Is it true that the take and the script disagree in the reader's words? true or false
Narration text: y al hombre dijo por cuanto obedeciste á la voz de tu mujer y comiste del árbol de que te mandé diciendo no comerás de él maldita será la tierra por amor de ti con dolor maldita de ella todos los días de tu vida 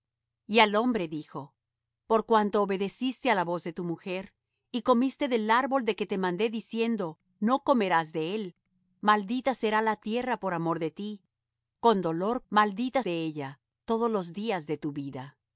false